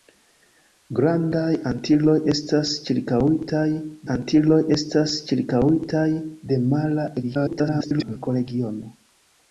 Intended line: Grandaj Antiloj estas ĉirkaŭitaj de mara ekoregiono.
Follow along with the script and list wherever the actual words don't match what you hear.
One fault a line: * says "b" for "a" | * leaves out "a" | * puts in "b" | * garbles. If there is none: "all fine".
* puts in "Antiloj estas ĉirkaŭitaj"
* garbles